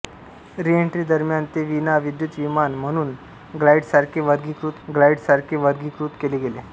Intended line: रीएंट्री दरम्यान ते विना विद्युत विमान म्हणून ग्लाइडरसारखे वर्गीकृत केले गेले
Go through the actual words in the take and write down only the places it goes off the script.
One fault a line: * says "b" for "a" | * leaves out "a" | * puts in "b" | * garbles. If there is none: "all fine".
* puts in "ग्लाइडरसारखे वर्गीकृत"